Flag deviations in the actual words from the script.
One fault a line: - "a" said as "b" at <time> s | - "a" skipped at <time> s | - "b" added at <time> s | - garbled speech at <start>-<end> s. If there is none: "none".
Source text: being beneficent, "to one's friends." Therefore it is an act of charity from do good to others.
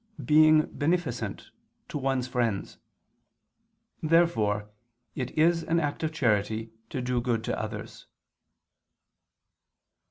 - "from" said as "to" at 6.9 s